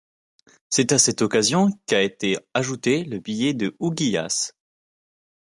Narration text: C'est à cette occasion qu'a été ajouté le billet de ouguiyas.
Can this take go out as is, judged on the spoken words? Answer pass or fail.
pass